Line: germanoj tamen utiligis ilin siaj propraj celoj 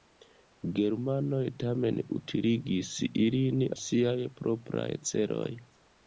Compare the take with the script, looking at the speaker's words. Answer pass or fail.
pass